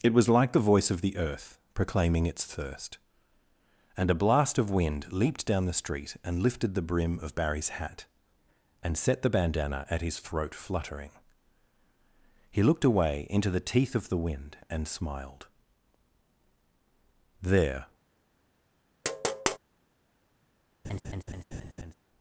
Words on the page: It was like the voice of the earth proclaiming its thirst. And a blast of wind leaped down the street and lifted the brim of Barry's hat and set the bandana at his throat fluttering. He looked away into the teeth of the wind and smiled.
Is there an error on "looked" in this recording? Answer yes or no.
no